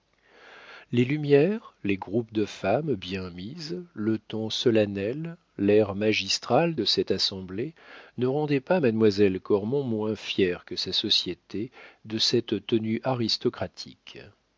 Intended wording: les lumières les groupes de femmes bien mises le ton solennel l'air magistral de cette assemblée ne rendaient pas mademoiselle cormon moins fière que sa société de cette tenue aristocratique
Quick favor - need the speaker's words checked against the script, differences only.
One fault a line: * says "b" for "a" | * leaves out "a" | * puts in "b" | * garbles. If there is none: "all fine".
all fine